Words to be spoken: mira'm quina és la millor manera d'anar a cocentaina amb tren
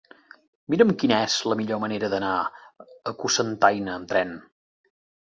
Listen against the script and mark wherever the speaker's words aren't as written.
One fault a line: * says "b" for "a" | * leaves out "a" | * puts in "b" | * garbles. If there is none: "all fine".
all fine